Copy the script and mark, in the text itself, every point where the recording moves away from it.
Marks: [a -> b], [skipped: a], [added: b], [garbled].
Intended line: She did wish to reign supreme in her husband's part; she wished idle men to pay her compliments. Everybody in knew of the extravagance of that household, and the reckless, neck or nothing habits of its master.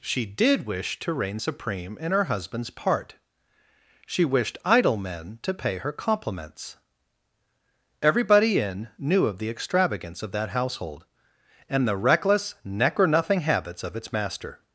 She did wish to reign supreme in her husband's part; she wished idle men to pay her compliments. Everybody in knew of the extravagance of that household, and the reckless, neck or nothing habits of its master.